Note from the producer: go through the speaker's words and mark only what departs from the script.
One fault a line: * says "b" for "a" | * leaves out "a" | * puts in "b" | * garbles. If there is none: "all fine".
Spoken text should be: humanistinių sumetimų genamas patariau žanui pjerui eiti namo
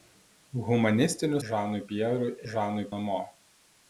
* leaves out "sumetimų genamas patariau"
* says "žanui" for "eiti"